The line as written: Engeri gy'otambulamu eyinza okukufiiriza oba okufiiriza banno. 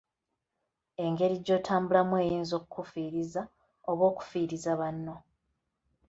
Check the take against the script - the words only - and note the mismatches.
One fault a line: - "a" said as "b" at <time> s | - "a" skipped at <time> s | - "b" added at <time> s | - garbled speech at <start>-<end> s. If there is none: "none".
none